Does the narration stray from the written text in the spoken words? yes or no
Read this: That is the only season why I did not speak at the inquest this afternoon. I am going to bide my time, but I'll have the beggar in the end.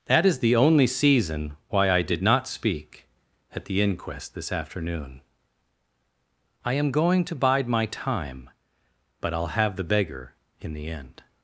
no